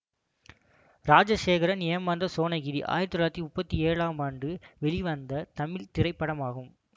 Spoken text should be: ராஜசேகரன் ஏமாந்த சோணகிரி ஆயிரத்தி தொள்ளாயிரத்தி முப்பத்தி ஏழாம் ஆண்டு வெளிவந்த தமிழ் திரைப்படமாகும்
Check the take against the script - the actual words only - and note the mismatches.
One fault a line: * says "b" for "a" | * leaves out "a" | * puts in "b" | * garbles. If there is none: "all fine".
all fine